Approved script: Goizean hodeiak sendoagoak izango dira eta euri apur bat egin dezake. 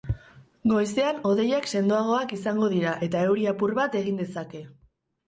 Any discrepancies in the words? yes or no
no